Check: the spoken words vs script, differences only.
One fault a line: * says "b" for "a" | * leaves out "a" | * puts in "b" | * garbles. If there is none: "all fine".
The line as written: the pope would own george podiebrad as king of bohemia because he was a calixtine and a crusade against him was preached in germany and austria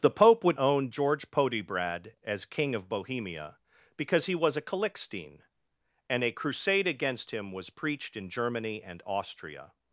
all fine